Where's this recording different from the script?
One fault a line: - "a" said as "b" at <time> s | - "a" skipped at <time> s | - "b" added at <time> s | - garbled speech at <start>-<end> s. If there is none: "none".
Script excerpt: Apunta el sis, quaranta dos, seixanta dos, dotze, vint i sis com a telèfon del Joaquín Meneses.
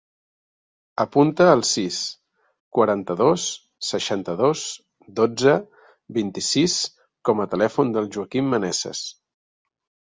none